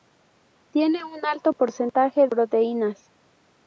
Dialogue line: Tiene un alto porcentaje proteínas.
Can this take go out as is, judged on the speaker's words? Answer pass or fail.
pass